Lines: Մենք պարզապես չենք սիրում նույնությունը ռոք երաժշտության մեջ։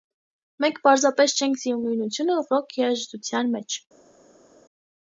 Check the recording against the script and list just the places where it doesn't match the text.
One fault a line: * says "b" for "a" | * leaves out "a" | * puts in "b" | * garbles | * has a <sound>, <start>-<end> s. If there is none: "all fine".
all fine